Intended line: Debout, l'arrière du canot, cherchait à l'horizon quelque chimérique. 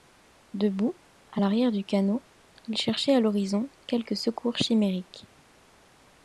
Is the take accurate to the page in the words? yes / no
no